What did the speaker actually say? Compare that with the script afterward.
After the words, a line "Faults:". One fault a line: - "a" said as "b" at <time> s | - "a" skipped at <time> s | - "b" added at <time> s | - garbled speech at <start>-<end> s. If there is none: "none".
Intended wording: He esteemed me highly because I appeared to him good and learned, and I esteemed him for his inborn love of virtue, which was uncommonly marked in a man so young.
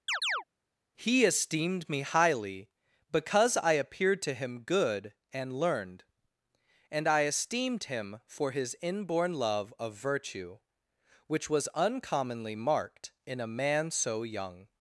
He esteemed me highly because I appeared to him good and learned, and I esteemed him for his inborn love of virtue, which was uncommonly marked in a man so young.
Faults:
none